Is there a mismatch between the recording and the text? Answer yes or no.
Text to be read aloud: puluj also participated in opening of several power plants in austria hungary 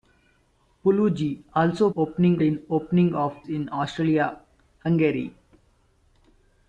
yes